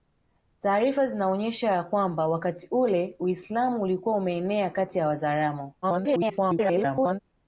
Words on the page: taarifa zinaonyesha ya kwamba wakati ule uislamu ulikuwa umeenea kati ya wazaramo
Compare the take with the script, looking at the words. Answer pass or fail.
fail